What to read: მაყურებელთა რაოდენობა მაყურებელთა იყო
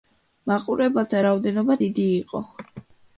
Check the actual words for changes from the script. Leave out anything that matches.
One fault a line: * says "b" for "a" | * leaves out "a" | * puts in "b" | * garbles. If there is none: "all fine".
* says "დიდი" for "მაყურებელთა"